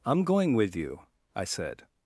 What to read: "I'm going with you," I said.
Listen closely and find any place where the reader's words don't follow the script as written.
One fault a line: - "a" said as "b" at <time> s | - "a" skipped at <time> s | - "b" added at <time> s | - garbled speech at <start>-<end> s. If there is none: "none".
none